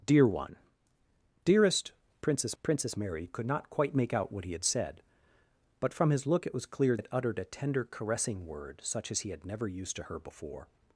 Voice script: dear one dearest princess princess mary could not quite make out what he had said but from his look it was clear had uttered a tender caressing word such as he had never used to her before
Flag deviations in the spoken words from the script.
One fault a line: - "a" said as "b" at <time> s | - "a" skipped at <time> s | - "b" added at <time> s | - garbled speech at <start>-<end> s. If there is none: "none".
none